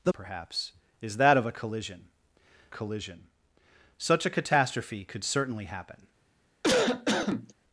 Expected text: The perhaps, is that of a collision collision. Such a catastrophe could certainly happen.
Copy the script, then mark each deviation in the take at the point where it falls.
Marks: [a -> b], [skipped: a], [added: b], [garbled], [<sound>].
The perhaps, is that of a collision collision. Such a catastrophe could certainly happen. [cough]